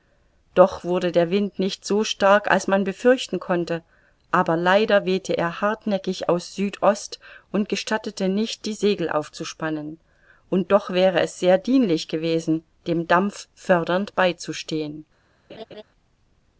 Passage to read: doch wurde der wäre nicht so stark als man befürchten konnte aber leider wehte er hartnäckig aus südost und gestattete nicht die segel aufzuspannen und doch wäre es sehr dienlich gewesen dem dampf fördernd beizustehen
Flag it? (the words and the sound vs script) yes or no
yes